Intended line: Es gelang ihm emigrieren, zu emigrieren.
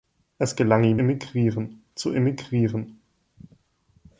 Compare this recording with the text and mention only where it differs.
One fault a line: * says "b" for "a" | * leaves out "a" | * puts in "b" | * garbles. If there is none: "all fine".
all fine